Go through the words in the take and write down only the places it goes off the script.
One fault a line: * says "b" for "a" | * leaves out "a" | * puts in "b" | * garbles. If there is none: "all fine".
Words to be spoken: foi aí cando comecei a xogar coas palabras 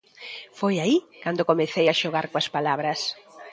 all fine